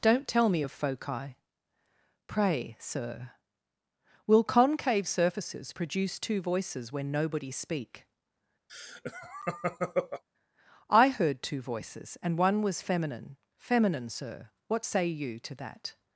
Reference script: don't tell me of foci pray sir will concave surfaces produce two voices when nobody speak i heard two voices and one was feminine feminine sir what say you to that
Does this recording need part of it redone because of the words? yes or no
no